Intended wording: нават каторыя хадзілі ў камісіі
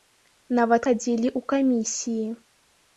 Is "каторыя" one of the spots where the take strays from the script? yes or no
yes